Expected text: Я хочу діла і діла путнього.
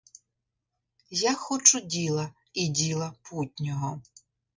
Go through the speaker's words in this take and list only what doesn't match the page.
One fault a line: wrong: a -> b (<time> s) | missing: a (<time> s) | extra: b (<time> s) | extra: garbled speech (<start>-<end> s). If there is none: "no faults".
no faults